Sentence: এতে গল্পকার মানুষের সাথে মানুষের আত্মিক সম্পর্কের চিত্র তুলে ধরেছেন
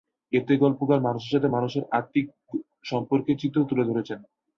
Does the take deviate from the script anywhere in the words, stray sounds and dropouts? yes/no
no